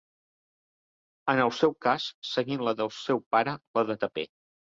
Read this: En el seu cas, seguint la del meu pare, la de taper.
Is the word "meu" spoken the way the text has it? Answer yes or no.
no